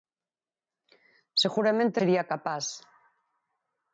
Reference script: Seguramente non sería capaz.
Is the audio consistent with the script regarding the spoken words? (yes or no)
no